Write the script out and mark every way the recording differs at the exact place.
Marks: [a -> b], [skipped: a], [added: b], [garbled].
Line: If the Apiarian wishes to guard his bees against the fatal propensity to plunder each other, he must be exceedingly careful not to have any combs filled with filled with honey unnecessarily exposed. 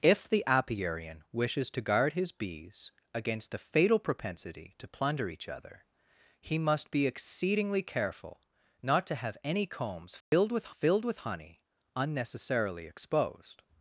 If the Apiarian wishes to guard his bees against the fatal propensity to plunder each other, he must be exceedingly careful not to have any combs filled with filled with honey unnecessarily exposed.